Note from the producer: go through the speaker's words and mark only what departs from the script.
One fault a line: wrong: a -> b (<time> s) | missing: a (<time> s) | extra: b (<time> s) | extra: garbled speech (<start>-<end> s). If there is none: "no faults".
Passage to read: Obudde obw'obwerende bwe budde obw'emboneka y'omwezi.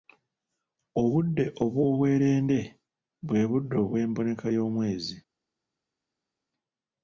no faults